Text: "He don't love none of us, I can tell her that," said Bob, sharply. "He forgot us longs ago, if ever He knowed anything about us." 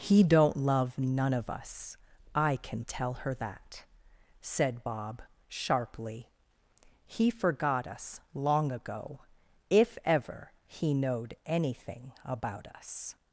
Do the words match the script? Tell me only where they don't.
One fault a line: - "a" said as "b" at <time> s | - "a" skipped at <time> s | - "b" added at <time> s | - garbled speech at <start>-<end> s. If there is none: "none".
- "longs" said as "long" at 8.3 s